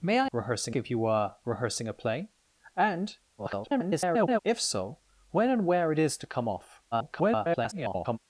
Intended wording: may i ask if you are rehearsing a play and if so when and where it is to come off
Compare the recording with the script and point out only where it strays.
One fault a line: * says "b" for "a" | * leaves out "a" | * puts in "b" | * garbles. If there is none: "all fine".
* says "rehearsing" for "ask"
* garbles
* garbles